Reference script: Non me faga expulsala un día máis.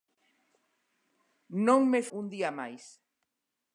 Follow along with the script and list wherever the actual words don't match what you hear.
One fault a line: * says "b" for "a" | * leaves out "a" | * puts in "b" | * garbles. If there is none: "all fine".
* leaves out "faga expulsala"